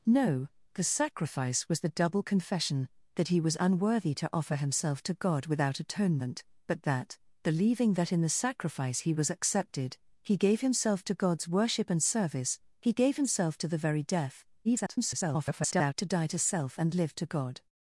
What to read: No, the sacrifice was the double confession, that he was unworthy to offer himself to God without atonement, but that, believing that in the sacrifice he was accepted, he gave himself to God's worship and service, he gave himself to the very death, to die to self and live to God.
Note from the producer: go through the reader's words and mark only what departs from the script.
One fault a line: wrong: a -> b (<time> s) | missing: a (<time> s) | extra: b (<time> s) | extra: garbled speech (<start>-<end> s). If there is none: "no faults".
extra: garbled speech (14.6-15.9 s)